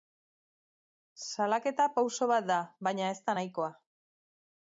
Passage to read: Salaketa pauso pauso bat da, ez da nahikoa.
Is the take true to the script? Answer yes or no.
no